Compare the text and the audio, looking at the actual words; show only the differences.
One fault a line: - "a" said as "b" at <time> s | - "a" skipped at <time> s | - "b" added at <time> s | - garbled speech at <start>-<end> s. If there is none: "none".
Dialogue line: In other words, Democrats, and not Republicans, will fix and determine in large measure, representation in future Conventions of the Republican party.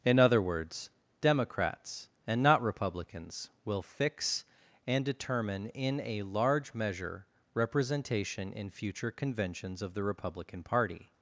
- "a" added at 6.0 s